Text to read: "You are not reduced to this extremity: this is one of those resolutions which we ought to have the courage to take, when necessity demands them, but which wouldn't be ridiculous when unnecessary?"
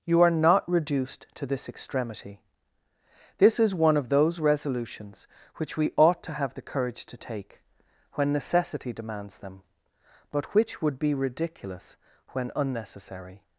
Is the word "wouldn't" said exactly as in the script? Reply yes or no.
no